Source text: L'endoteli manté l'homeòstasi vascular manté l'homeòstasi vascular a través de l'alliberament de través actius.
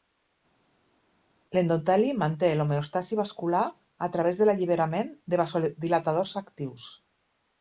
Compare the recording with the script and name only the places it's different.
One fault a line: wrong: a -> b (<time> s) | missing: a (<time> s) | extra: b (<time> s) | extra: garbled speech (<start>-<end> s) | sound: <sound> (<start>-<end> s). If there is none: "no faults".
missing: manté l'homeòstasi vascular (3.7 s)
wrong: través -> vasodilatadors (5.5 s)